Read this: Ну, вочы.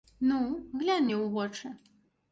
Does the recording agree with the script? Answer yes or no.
no